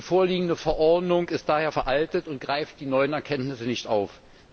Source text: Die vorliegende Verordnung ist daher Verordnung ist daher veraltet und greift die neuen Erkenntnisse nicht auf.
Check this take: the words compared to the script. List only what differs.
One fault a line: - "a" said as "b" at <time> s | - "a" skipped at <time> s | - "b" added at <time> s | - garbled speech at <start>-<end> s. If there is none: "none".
- "Verordnung ist daher" skipped at 1.7 s